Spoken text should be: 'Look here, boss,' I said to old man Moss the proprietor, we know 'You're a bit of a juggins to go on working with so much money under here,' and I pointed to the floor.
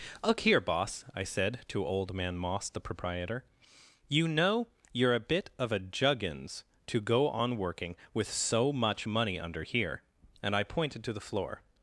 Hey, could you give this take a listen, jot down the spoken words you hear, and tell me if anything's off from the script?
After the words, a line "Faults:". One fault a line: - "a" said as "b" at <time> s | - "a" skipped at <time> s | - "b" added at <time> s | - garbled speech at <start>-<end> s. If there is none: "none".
'Look here, boss,' I said to old man Moss the proprietor, you know 'You're a bit of a juggins to go on working with so much money under here,' and I pointed to the floor.
Faults:
- "we" said as "you" at 4.1 s